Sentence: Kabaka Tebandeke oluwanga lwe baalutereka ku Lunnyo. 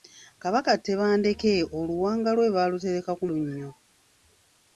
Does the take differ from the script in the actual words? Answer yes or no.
no